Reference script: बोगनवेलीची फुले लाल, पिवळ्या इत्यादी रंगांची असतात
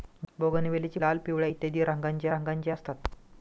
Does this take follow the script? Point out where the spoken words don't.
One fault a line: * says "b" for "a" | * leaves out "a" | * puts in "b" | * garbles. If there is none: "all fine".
* leaves out "फुले"
* puts in "रंगांची"